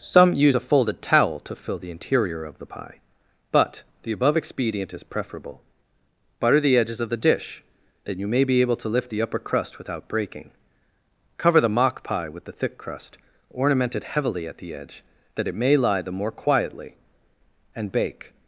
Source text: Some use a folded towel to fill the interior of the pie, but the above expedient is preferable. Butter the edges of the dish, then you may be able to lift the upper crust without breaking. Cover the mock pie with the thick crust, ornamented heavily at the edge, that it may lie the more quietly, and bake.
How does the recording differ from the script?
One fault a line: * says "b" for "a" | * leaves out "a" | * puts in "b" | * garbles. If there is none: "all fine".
all fine